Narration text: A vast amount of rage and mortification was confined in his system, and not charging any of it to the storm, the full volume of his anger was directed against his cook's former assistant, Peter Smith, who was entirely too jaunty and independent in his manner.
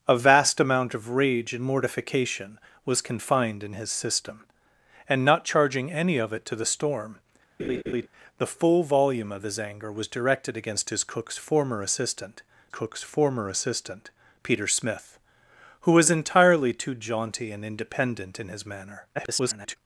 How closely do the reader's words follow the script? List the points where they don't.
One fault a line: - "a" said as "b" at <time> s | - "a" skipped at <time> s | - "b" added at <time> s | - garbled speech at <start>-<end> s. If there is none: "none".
- "cook's former assistant" added at 12.7 s
- garbled speech at 19.1-19.8 s